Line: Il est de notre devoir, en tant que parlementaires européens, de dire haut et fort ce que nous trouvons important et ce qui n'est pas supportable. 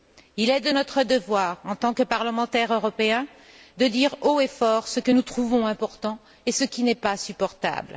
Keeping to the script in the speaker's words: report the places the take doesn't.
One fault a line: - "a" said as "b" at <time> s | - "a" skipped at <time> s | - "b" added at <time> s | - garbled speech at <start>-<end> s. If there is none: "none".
none